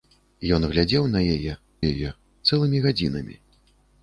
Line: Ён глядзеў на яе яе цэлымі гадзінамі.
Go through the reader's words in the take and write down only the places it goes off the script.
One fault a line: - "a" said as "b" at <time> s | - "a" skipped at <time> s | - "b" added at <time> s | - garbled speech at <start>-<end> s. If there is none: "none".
none